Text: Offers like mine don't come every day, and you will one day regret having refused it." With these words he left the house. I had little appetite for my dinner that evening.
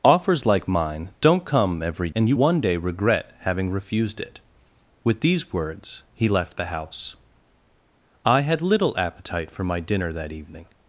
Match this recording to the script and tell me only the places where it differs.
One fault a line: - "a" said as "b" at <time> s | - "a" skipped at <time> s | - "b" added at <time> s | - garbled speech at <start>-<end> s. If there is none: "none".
- "day" skipped at 2.1 s
- "will" skipped at 2.4 s